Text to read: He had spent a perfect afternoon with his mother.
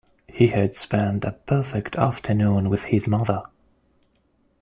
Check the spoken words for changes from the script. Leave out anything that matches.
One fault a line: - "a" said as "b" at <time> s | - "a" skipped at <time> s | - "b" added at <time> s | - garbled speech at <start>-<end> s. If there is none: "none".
none